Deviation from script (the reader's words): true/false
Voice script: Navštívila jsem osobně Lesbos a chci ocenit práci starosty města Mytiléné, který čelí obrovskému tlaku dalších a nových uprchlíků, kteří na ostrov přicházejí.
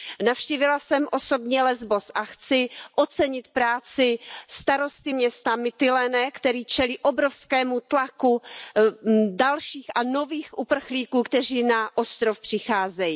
false